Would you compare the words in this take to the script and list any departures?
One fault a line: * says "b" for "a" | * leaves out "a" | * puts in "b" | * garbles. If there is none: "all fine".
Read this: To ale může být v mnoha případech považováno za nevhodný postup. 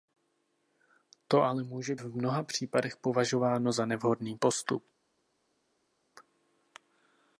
* leaves out "být"